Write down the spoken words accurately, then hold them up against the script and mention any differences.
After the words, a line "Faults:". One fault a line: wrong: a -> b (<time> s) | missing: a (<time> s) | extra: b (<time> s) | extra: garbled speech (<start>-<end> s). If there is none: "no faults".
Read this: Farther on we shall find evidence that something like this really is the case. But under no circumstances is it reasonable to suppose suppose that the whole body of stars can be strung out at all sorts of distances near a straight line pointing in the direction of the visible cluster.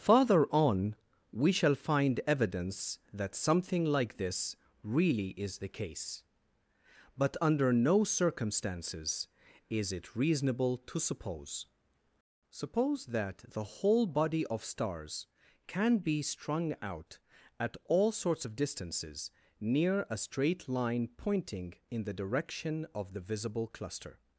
Farther on we shall find evidence that something like this really is the case. But under no circumstances is it reasonable to suppose suppose that the whole body of stars can be strung out at all sorts of distances near a straight line pointing in the direction of the visible cluster.
Faults:
no faults